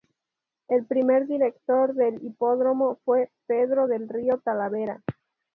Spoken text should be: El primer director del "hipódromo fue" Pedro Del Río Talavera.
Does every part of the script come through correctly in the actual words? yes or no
yes